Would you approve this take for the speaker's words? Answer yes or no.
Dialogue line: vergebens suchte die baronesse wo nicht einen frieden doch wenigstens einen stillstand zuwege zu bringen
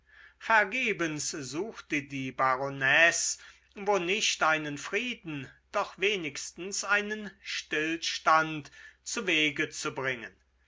yes